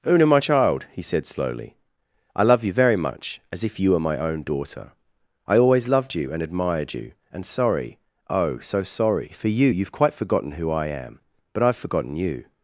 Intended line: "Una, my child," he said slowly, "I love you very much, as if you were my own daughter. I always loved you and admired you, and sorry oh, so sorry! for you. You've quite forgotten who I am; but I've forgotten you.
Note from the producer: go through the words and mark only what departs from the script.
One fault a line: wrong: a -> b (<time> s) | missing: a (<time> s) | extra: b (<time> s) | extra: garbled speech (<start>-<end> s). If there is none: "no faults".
no faults